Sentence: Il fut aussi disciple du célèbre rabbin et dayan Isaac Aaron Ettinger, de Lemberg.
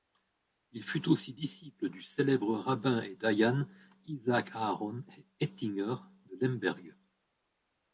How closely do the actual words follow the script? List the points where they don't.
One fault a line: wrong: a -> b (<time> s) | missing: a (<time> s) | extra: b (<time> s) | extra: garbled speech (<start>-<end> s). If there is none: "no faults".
no faults